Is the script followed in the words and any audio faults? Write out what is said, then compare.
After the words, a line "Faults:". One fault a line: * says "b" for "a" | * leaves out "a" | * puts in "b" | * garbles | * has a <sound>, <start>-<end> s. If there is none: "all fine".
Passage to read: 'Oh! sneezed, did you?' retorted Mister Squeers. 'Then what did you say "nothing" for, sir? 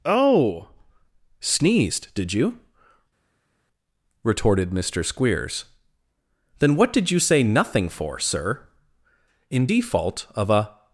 'Oh! sneezed, did you?' retorted Mister Squeers. 'Then what did you say "nothing" for, sir? In default of a
Faults:
* puts in "In default of a"